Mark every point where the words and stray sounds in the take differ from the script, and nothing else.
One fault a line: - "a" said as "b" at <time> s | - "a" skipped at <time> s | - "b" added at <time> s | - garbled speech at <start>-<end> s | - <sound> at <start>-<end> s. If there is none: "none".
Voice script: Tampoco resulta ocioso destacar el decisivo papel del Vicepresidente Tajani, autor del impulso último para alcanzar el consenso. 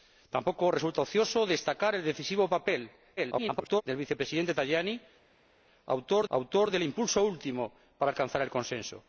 - garbled speech at 3.2-3.8 s
- "autor" added at 6.3 s